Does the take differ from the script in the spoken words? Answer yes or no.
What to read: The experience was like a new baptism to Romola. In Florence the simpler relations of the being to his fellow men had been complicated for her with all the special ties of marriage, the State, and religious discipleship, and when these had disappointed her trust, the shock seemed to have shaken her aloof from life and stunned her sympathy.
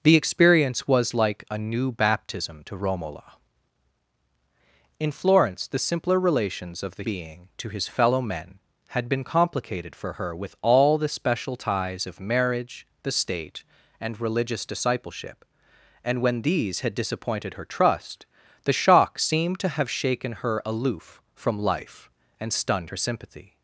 no